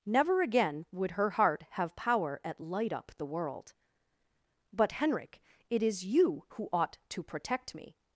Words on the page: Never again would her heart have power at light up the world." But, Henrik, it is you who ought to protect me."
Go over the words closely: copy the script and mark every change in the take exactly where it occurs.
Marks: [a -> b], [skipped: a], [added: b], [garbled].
Never again would her heart have power at light up the world." But, Henrik, it is you who ought to protect me."